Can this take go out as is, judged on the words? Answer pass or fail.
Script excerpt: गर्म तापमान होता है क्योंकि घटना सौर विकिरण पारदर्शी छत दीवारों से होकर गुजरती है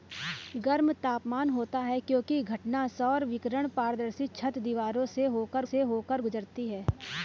fail